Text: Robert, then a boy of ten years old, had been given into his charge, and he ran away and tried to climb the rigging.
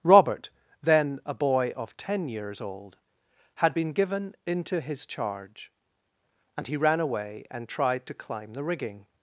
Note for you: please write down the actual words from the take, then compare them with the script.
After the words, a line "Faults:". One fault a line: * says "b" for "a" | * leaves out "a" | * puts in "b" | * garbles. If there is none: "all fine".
Robert, then a boy of ten years old, had been given into his charge, and he ran away and tried to climb the rigging.
Faults:
all fine